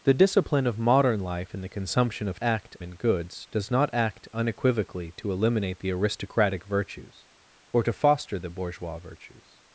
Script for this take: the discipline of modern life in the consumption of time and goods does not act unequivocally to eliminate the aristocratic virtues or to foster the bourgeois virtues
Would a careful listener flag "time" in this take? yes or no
yes